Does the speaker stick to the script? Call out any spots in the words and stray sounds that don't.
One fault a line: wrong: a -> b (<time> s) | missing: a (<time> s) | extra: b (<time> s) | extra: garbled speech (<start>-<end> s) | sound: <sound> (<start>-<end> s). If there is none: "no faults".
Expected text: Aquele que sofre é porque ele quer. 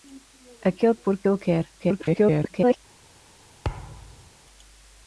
missing: que sofre é (0.9 s)
extra: garbled speech (1.8-2.8 s)
sound: thud (3.6-4.3 s)